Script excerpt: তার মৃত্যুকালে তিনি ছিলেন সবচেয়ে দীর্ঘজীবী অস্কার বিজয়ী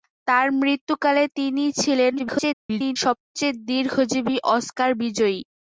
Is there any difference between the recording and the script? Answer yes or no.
yes